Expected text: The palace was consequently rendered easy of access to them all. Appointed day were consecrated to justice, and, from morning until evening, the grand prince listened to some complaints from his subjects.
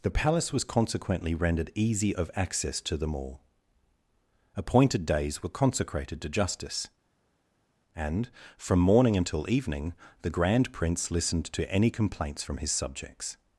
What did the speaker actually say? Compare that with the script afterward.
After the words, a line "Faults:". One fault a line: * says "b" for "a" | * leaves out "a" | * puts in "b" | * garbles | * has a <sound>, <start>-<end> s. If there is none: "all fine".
The palace was consequently rendered easy of access to them all. Appointed days were consecrated to justice, and, from morning until evening, the grand prince listened to any complaints from his subjects.
Faults:
* says "days" for "day"
* says "any" for "some"